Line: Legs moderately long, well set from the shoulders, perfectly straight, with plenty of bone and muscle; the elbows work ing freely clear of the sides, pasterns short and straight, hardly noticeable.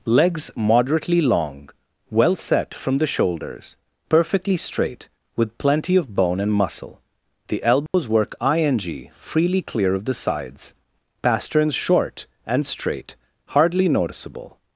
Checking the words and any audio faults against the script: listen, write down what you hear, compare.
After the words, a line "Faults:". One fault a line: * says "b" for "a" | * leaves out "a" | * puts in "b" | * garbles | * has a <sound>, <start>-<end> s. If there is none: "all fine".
Legs moderately long, well set from the shoulders, perfectly straight, with plenty of bone and muscle; the elbows work ing freely clear of the sides, pasterns short and straight, hardly noticeable.
Faults:
* has a dropout, 7.9-7.9 s